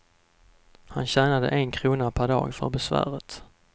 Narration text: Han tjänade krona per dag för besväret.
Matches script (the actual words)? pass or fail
fail